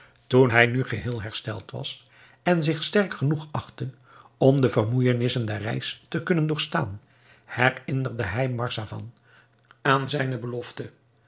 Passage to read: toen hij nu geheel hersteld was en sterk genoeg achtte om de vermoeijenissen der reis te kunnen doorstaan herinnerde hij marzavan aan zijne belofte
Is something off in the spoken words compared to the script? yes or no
yes